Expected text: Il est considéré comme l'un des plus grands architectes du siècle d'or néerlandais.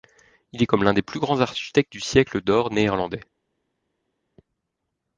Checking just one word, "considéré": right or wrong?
wrong